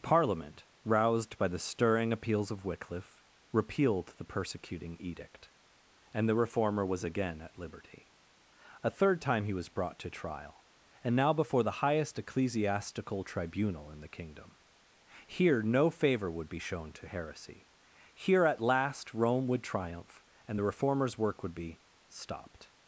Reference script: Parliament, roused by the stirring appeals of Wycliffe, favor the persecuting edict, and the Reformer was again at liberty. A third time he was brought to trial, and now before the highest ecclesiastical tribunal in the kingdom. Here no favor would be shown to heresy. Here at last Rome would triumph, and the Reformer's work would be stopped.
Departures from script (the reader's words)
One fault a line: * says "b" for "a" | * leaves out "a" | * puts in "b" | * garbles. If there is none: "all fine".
* says "repealed" for "favor"